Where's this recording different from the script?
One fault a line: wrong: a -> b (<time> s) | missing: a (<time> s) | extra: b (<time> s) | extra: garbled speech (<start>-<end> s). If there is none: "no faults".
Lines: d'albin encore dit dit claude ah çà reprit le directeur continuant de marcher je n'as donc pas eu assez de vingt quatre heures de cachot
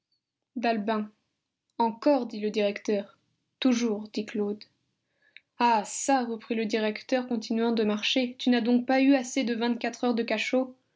extra: le directeur toujours (2.4 s)
wrong: je -> tu (8.4 s)